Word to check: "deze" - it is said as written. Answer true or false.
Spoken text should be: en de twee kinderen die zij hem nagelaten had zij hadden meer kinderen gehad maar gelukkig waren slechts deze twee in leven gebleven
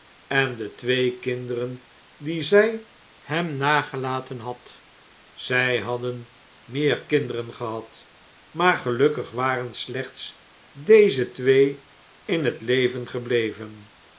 true